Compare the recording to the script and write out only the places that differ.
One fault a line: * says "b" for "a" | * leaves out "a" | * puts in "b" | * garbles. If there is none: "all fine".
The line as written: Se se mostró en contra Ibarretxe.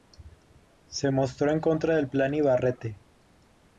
* leaves out "se"
* puts in "del Plan"